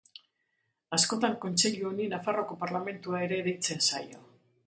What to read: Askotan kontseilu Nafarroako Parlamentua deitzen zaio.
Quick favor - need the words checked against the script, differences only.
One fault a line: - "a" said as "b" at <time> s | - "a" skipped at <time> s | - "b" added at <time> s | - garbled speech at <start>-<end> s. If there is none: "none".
- "honi" added at 1.9 s
- "ere" added at 3.3 s